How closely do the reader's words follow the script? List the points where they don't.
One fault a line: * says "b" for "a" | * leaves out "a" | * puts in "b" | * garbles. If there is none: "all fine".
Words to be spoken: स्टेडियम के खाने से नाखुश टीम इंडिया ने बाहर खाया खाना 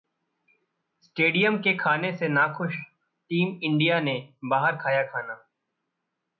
all fine